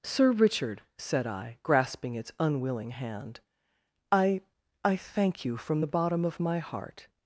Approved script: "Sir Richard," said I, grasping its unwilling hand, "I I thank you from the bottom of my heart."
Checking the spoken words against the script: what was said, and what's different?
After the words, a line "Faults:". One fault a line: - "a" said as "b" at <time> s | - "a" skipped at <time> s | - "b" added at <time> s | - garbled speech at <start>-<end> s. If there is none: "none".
"Sir Richard," said I, grasping its unwilling hand, "I I thank you from the bottom of my heart."
Faults:
none